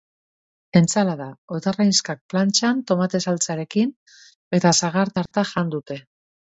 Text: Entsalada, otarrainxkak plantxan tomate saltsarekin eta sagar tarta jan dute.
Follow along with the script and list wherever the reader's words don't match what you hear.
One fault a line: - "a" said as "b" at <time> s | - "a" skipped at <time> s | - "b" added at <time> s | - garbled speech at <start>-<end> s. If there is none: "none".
none